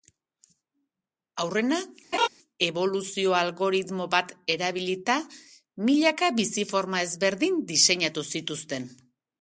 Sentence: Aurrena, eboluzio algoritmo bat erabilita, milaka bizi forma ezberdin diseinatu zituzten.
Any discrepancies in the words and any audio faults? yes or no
yes